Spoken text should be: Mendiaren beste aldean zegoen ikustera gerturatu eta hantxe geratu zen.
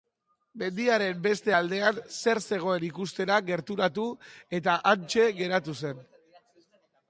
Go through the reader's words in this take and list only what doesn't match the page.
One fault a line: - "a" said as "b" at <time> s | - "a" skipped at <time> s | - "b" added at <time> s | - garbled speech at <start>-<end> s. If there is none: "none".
- "zer" added at 2.1 s